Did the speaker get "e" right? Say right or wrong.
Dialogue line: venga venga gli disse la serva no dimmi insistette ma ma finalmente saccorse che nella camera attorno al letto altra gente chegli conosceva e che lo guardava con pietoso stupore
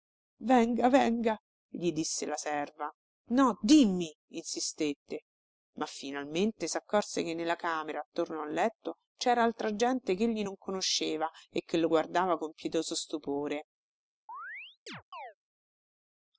right